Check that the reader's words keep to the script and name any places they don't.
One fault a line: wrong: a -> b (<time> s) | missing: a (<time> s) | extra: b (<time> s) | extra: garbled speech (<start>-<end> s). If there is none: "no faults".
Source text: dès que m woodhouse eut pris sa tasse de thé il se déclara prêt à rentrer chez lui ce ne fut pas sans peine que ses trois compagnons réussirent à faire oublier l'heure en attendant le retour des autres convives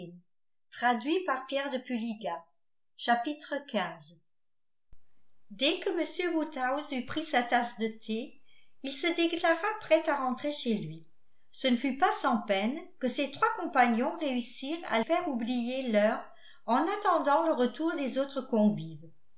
no faults